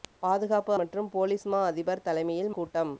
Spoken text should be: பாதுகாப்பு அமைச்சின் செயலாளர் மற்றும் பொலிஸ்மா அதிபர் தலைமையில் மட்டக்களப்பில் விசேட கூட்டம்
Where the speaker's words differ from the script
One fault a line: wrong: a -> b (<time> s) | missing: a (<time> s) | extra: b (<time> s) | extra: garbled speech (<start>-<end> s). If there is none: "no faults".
missing: அமைச்சின் செயலாளர் (0.7 s)
missing: மட்டக்களப்பில் விசேட (2.5 s)